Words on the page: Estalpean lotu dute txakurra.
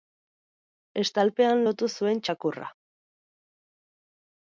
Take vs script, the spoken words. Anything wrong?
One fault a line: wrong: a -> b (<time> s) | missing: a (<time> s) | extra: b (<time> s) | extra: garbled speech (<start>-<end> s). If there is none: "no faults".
wrong: dute -> zuen (2.0 s)